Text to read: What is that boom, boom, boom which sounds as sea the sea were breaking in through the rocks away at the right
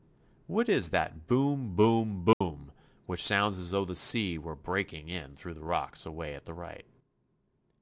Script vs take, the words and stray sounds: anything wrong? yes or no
yes